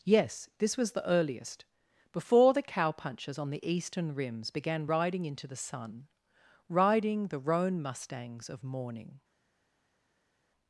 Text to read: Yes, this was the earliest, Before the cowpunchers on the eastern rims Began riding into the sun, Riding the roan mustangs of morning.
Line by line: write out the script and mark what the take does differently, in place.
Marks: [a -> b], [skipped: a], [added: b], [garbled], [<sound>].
Yes, this was the earliest, Before the cowpunchers on the eastern rims Began riding into the sun, Riding the roan mustangs of morning.